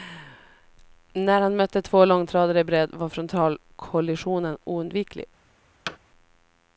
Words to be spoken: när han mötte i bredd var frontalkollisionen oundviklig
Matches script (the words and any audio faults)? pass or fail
fail